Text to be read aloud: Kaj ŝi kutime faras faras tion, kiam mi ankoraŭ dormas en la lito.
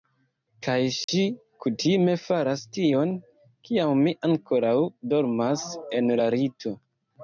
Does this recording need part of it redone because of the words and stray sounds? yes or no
yes